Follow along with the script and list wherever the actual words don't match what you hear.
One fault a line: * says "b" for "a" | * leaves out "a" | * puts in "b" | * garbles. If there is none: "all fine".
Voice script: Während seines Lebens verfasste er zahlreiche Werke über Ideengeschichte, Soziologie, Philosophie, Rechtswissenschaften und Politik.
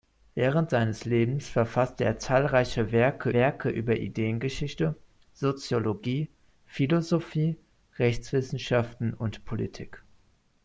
* puts in "Werke"